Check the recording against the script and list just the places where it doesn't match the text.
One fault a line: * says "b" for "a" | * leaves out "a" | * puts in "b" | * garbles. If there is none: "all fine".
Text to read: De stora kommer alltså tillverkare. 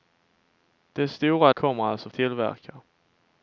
all fine